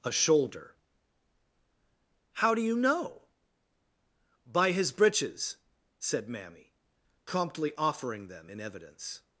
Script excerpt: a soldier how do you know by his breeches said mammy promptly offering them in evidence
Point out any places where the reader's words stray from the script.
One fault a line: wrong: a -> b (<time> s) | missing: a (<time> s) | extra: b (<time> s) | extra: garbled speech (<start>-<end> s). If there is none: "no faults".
wrong: soldier -> shoulder (0.1 s)